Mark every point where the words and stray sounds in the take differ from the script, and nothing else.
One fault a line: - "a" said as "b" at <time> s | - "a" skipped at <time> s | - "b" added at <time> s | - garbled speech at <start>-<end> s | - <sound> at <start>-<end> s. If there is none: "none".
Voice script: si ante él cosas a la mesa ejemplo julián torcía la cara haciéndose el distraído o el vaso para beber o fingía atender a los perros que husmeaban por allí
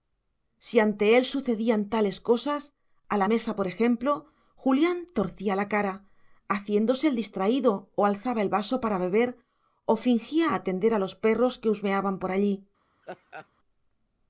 - "sucedían tales" added at 1.2 s
- "por" added at 3.6 s
- "alzaba" added at 8.0 s
- laugh at 13.0-13.5 s